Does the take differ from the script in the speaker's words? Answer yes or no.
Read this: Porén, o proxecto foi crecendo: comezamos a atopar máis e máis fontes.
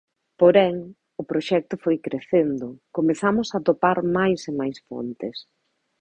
no